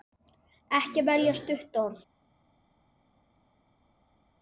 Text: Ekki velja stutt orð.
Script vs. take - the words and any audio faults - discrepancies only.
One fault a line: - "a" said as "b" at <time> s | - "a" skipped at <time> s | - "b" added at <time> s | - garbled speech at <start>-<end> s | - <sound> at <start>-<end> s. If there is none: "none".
none